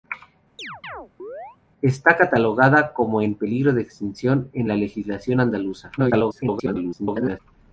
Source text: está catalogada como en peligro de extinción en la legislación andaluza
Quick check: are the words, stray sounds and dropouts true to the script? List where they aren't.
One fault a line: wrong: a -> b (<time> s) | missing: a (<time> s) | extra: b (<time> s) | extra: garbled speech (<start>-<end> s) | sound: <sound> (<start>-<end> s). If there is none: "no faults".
sound: chirp (0.6-1.6 s)
extra: garbled speech (6.0-7.4 s)